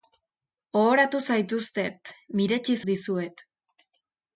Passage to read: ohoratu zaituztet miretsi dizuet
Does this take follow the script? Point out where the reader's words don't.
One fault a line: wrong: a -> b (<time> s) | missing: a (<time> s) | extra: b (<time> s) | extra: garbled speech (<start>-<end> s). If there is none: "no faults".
no faults